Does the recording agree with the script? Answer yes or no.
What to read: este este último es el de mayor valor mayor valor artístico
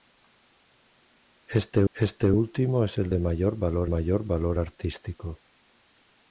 yes